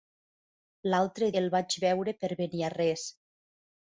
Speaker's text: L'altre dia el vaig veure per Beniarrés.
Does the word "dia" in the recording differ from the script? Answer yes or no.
yes